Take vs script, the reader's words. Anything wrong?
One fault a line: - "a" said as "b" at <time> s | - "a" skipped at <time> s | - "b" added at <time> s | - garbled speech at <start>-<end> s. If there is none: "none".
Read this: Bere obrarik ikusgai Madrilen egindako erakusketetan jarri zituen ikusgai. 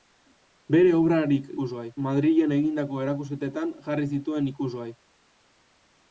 none